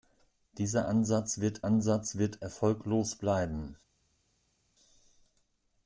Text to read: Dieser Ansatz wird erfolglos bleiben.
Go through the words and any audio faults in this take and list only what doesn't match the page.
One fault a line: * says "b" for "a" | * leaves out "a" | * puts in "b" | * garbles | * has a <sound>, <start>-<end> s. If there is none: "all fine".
* puts in "Ansatz wird"